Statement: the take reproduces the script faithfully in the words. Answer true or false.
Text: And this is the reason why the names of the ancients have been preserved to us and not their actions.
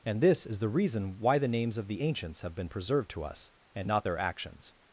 true